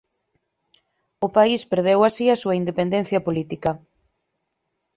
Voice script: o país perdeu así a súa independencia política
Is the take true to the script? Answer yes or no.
yes